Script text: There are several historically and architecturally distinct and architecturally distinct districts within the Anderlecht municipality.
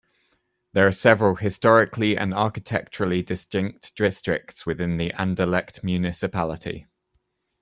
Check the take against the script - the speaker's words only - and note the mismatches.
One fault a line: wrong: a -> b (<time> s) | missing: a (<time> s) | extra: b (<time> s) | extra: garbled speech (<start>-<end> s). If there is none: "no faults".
missing: and architecturally distinct (4.0 s)